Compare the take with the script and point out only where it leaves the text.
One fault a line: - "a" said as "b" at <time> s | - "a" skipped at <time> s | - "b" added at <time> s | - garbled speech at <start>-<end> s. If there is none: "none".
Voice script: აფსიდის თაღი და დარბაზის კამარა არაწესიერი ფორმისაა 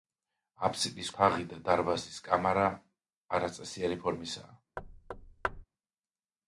none